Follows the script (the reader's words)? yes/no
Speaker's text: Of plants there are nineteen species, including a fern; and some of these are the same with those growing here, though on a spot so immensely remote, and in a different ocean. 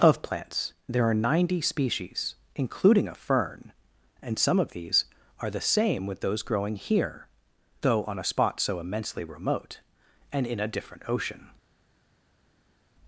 no